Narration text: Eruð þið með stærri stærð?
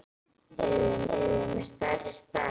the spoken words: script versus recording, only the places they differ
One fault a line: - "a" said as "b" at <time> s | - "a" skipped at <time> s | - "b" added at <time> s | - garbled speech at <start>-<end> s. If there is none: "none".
- "eruð þið" added at 1.1 s